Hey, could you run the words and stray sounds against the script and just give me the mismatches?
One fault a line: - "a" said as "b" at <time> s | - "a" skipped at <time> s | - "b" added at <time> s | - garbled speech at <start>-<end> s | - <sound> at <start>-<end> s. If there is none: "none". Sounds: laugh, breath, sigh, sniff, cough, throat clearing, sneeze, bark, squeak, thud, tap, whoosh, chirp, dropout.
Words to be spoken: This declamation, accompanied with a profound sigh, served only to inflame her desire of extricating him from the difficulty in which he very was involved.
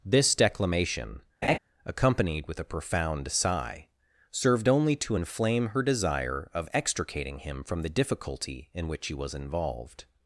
- laugh at 1.4-1.6 s
- "very" skipped at 9.1 s